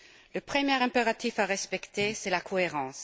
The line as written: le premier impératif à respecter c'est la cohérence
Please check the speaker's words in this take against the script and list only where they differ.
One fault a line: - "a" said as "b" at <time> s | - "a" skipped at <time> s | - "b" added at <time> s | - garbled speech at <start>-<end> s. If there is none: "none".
none